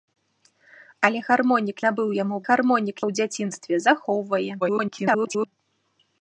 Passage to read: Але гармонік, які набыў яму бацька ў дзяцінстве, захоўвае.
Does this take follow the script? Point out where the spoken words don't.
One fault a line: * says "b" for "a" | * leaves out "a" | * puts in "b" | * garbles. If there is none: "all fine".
* leaves out "які"
* says "гармонік" for "бацька"
* garbles